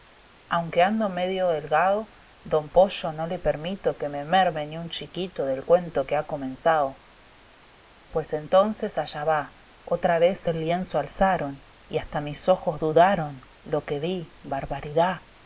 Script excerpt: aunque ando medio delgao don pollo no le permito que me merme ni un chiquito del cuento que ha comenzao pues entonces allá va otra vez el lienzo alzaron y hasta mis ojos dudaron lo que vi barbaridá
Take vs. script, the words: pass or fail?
pass